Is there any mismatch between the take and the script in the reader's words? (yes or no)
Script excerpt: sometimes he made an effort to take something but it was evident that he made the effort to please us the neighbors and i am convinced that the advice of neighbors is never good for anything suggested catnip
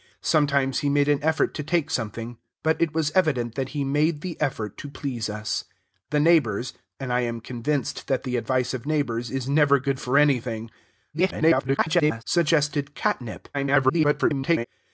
yes